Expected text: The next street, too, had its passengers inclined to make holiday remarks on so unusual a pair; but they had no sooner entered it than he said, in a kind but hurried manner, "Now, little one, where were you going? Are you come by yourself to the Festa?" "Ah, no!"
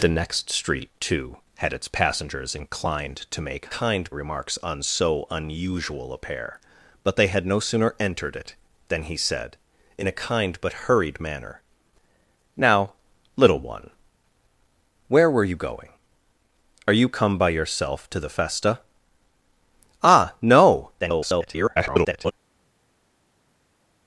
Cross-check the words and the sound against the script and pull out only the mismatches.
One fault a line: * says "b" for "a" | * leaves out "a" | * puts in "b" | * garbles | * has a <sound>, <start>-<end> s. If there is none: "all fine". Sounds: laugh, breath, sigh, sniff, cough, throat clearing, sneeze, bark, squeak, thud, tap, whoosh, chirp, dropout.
* says "kind" for "holiday"
* garbles